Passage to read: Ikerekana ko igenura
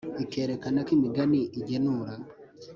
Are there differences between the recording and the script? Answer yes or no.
yes